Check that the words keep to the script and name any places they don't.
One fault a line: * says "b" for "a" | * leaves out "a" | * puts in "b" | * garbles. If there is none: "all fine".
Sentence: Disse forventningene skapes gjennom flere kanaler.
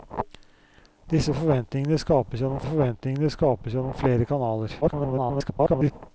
* puts in "forventningene skapes gjennom"
* garbles